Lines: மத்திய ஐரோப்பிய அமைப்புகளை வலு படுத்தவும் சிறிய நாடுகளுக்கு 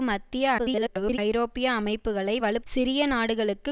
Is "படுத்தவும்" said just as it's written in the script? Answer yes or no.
no